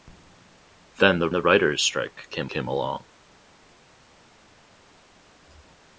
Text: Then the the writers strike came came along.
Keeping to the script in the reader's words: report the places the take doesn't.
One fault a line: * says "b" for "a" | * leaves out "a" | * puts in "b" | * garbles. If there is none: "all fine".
all fine